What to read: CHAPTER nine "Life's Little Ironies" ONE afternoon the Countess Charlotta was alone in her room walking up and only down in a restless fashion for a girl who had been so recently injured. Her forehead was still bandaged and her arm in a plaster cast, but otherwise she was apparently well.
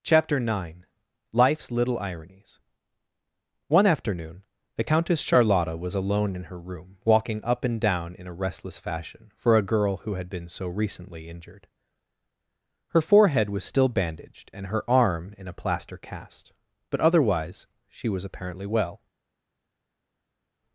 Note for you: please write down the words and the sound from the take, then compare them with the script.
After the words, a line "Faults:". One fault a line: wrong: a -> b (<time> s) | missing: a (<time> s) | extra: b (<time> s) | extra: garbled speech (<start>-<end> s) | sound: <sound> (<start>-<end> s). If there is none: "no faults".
CHAPTER nine "Life's Little Ironies" ONE afternoon the Countess Charlotta was alone in her room walking up and down in a restless fashion for a girl who had been so recently injured. Her forehead was still bandaged and her arm in a plaster cast, but otherwise she was apparently well.
Faults:
missing: only (7.8 s)